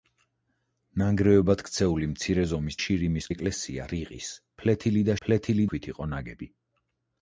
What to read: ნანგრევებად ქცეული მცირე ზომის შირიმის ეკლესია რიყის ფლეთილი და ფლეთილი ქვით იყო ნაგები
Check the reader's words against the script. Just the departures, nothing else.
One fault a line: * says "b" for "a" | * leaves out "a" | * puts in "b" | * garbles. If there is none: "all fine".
all fine